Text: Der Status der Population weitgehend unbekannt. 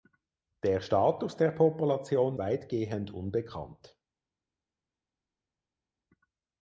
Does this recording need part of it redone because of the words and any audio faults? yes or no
no